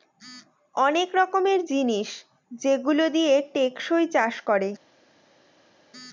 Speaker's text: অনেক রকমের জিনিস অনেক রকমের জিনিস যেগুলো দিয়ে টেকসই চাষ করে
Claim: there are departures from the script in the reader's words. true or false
true